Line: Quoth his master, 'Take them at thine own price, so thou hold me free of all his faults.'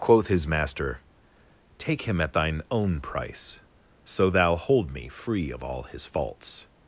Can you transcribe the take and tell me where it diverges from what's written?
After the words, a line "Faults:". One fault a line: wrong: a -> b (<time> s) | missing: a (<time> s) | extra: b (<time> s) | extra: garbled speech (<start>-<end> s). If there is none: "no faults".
Quoth his master, 'Take him at thine own price, so thou hold me free of all his faults.'
Faults:
wrong: them -> him (2.0 s)